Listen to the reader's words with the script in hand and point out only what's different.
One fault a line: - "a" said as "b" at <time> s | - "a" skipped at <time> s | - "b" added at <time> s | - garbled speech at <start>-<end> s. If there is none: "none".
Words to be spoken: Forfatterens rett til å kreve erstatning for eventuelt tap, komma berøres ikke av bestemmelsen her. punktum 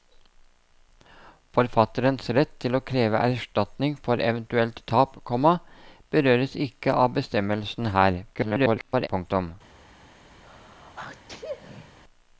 - garbled speech at 8.3-9.1 s